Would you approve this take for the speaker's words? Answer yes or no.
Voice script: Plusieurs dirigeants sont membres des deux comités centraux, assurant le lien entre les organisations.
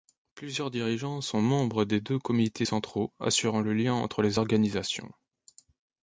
yes